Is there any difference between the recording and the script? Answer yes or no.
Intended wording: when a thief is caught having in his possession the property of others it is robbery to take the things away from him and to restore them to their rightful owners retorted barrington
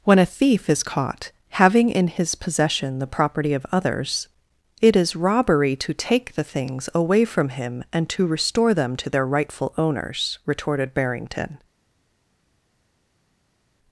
no